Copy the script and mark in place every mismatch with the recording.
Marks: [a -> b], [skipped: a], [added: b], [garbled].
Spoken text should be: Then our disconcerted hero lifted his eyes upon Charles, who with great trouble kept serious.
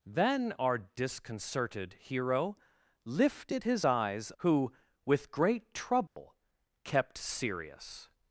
Then our disconcerted hero lifted his eyes [skipped: upon Charles,] who with great trouble kept serious.